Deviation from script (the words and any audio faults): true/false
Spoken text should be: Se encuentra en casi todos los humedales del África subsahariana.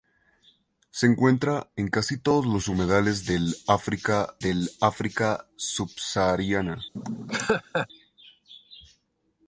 true